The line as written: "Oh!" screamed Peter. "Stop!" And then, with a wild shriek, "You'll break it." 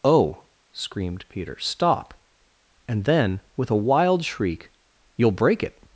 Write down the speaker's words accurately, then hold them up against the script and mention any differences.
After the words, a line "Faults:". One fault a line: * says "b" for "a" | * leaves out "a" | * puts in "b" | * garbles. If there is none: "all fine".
"Oh!" screamed Peter. "Stop!" And then, with a wild shriek, "You'll break it."
Faults:
all fine